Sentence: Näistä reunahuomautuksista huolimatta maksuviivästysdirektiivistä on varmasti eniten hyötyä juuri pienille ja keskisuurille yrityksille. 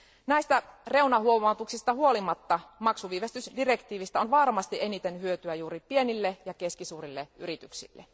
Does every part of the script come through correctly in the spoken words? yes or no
yes